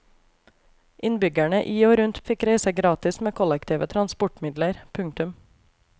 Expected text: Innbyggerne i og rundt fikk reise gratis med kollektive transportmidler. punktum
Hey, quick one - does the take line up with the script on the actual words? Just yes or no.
yes